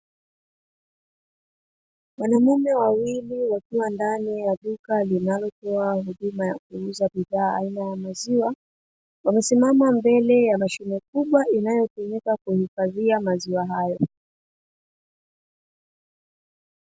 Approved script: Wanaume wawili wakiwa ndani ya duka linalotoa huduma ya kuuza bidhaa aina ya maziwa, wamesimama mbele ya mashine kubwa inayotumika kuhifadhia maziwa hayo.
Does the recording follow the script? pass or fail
pass